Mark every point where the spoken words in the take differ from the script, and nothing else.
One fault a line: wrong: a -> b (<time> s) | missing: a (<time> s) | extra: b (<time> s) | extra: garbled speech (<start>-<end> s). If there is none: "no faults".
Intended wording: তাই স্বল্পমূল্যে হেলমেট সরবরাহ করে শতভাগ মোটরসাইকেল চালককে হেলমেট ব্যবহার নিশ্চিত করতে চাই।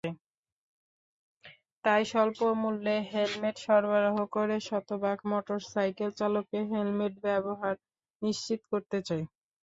no faults